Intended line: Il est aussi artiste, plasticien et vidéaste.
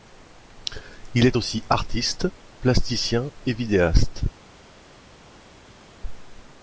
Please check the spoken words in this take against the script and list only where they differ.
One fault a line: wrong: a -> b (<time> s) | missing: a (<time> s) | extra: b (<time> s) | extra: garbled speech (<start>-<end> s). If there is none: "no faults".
no faults